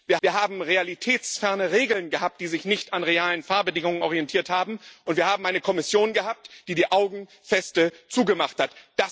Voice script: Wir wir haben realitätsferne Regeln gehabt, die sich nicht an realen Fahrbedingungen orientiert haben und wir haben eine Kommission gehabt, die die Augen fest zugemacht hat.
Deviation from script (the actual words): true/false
false